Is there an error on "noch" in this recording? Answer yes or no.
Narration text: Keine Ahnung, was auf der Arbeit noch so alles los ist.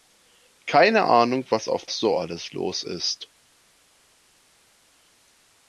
yes